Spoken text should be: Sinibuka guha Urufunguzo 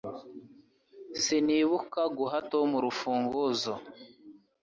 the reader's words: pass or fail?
fail